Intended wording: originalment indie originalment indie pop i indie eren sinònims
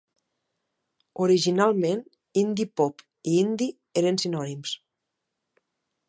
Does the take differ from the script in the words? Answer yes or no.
yes